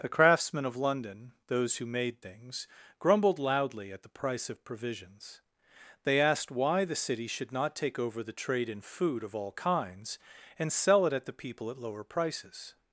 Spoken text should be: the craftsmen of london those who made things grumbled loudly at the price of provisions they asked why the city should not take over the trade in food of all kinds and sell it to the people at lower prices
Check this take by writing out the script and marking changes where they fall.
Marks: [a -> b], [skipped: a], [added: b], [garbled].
the craftsmen of london those who made things grumbled loudly at the price of provisions they asked why the city should not take over the trade in food of all kinds and sell it [to -> at] the people at lower prices